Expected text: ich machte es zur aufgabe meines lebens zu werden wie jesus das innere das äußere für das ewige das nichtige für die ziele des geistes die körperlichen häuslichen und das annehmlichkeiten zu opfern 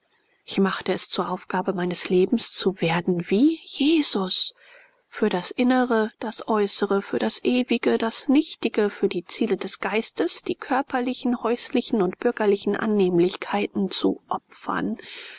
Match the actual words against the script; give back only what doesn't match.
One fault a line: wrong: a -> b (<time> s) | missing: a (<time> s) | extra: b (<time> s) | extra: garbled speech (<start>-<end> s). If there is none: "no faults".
extra: für (5.1 s)
wrong: das -> bürgerlichen (12.2 s)